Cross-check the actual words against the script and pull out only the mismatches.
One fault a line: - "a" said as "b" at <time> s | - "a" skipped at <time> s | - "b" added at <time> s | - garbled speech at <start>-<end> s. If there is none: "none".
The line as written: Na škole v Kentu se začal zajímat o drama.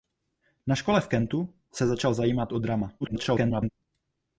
- garbled speech at 3.0-3.7 s